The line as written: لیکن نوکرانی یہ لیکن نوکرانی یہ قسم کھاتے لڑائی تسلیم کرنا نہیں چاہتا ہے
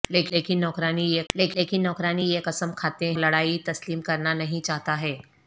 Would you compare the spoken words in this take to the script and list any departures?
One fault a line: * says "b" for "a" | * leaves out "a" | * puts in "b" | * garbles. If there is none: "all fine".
all fine